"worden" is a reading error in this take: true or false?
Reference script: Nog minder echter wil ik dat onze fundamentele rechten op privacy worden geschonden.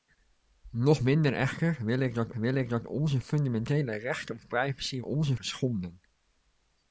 true